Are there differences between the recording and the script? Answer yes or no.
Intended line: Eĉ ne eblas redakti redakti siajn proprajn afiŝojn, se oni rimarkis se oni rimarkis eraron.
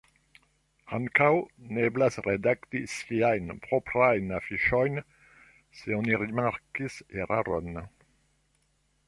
yes